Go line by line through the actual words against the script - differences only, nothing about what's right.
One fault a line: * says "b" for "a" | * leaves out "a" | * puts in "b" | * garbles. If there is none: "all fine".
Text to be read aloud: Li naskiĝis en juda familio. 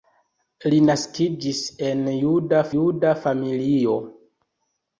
* puts in "juda"